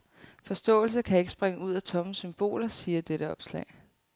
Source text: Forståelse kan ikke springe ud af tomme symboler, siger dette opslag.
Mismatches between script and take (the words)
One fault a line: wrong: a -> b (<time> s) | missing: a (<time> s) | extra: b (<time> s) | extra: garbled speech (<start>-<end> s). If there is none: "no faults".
no faults